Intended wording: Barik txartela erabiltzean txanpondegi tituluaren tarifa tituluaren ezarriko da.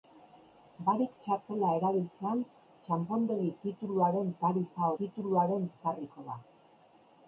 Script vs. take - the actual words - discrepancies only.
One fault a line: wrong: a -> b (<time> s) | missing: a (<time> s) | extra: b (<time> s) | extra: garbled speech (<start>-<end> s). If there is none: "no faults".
no faults